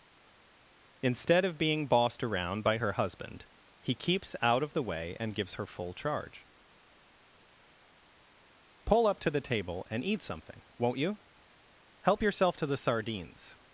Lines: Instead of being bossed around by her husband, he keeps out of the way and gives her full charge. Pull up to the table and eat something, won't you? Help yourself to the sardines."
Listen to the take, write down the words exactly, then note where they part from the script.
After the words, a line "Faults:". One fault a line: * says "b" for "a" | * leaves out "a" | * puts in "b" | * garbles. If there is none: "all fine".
Instead of being bossed around by her husband, he keeps out of the way and gives her full charge. Pull up to the table and eat something, won't you? Help yourself to the sardines."
Faults:
all fine